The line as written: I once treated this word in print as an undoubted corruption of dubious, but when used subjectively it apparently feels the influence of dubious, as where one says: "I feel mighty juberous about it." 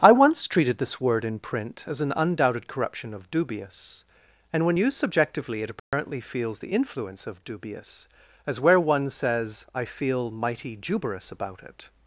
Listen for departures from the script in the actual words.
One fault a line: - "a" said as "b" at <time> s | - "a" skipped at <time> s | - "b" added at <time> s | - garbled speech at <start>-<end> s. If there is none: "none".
- "but" said as "and" at 4.5 s